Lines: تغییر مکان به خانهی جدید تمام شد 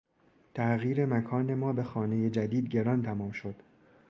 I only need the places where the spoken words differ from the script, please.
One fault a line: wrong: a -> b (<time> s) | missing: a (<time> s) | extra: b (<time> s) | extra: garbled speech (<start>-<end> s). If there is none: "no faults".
extra: ما (1.6 s)
extra: گران (2.7 s)